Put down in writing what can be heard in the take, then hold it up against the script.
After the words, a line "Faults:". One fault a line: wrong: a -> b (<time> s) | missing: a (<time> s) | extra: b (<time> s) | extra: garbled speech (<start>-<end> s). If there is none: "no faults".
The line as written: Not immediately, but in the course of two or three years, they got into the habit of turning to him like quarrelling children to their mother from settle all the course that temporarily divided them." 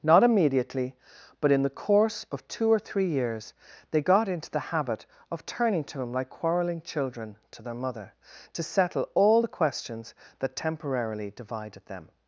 Not immediately, but in the course of two or three years, they got into the habit of turning to him like quarrelling children to their mother to settle all the questions that temporarily divided them."
Faults:
wrong: from -> to (8.5 s)
wrong: course -> questions (9.5 s)